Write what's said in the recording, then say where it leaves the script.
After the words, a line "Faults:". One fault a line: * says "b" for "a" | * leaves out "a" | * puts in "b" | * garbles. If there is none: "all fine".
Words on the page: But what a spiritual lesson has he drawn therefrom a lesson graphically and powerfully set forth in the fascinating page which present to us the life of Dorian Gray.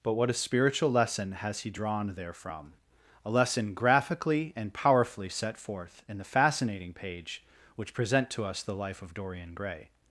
But what a spiritual lesson has he drawn therefrom a lesson graphically and powerfully set forth in the fascinating page which present to us the life of Dorian Gray.
Faults:
all fine